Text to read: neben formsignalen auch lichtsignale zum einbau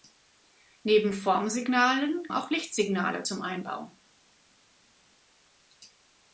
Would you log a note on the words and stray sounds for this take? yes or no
no